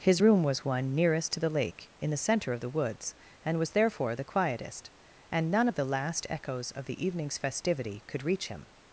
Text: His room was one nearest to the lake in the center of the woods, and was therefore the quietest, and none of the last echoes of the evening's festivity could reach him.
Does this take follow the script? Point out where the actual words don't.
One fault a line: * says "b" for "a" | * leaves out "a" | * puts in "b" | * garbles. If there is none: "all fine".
all fine